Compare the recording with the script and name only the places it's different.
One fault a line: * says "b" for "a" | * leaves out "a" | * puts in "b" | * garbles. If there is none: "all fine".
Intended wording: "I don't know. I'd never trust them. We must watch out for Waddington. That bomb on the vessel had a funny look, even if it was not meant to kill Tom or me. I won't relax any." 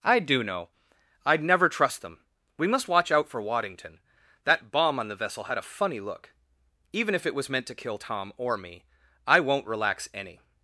* says "do" for "don't"
* leaves out "not"